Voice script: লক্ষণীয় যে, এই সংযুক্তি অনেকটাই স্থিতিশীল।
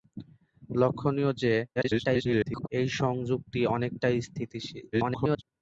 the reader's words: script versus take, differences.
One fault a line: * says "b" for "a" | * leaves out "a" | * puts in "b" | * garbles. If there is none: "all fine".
* garbles
* garbles